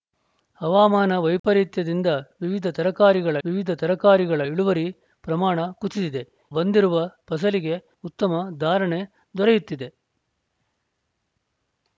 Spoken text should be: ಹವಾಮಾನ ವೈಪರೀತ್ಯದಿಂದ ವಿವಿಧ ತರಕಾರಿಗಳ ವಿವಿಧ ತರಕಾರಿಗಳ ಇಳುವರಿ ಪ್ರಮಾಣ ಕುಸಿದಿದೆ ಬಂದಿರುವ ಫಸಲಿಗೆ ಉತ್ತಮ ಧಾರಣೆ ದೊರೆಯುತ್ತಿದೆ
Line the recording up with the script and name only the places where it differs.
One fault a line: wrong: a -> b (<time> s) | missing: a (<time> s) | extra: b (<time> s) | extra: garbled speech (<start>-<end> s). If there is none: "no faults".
no faults